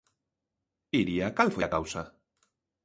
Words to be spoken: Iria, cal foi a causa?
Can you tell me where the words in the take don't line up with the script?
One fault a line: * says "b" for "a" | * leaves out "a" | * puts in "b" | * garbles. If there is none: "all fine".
all fine